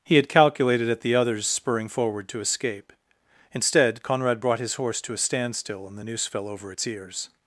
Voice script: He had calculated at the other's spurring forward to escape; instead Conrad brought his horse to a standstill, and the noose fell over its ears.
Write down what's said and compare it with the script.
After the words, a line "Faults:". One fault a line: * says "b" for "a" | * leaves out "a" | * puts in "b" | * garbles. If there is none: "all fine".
He had calculated at the other's spurring forward to escape; instead Conrad brought his horse to a standstill, and the noose fell over its ears.
Faults:
all fine